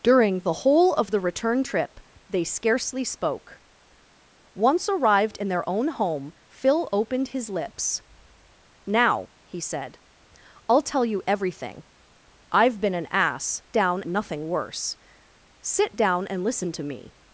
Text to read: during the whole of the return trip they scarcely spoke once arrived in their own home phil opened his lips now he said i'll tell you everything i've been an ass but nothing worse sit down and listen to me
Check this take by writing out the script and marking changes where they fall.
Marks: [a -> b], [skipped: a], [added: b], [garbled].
during the whole of the return trip they scarcely spoke once arrived in their own home phil opened his lips now he said i'll tell you everything i've been an ass [but -> down] nothing worse sit down and listen to me